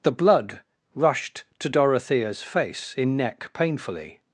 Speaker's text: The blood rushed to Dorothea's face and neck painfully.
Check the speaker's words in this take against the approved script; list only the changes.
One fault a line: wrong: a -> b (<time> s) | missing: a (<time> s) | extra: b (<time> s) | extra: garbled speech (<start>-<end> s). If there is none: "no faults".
wrong: and -> in (3.0 s)